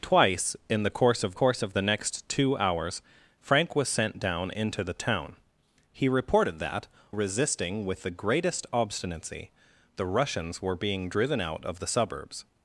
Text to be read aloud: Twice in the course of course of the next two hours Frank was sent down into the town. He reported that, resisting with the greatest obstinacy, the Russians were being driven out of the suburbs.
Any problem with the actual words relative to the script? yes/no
no